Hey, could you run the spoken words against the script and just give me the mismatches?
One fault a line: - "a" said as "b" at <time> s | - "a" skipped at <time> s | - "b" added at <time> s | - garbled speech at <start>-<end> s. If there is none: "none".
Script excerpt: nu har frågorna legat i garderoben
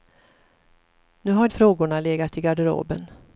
none